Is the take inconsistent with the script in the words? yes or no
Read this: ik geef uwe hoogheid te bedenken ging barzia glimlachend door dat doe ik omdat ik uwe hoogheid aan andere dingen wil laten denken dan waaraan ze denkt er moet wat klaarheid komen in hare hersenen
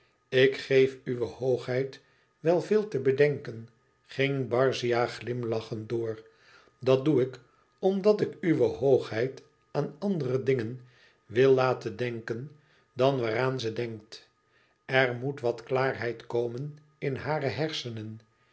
yes